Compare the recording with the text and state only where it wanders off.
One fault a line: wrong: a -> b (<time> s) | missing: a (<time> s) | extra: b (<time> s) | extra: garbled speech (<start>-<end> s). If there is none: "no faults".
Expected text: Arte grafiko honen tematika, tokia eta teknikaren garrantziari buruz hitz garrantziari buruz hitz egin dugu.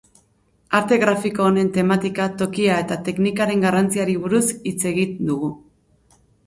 missing: garrantziari buruz hitz (4.8 s)